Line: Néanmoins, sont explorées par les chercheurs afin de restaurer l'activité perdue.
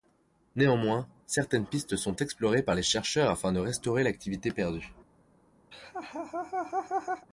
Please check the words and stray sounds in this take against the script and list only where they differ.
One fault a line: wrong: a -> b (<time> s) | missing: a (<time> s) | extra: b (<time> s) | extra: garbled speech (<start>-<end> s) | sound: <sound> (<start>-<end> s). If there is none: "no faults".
extra: certaines pistes (1.3 s)
sound: laugh (5.7-7.3 s)